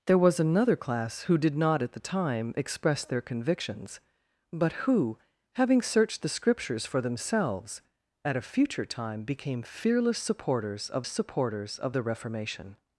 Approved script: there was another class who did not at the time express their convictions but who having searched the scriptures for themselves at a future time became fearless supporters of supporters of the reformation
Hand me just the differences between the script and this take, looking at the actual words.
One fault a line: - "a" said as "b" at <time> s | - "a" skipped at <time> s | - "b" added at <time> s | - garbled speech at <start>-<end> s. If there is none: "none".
none